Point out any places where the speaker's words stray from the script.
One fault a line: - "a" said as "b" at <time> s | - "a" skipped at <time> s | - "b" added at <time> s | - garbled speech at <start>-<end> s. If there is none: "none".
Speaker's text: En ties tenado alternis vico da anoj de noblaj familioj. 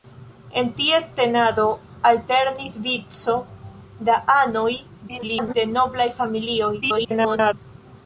- garbled speech at 5.1-5.5 s
- garbled speech at 6.8-7.5 s